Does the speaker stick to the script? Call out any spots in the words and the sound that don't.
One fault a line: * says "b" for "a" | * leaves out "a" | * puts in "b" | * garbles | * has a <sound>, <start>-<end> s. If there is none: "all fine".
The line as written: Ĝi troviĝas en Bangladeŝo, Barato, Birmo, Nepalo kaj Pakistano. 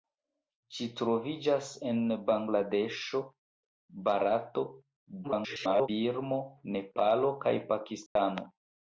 * garbles
* has a dropout, 8.1-8.2 s